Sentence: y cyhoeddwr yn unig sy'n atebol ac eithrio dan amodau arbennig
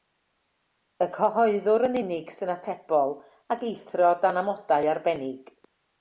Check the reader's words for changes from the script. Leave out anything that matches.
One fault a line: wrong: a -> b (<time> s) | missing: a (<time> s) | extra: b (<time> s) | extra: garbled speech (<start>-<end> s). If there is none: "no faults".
no faults